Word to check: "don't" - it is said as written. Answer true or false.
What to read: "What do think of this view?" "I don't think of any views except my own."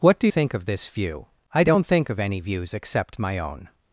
true